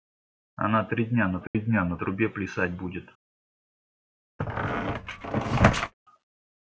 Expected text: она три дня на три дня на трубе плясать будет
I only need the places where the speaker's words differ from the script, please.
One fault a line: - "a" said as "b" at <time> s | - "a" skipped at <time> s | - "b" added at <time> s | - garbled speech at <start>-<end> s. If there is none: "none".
none